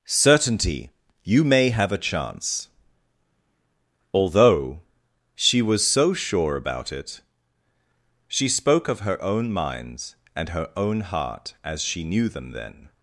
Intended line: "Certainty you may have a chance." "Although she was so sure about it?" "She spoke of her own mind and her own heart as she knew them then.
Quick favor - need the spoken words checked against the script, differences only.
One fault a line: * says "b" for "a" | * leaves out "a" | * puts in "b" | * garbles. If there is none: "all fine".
* says "minds" for "mind"